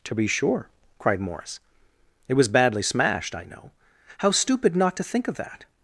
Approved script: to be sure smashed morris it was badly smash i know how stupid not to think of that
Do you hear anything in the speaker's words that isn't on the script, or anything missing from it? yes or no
yes